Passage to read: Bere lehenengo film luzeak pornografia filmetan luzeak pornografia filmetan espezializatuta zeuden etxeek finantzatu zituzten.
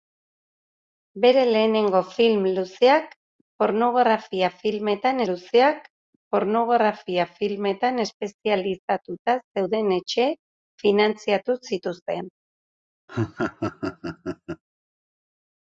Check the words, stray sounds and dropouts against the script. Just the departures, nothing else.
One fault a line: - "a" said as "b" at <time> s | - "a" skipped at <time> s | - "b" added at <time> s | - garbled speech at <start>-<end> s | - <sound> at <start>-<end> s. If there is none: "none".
- laugh at 13.1-14.6 s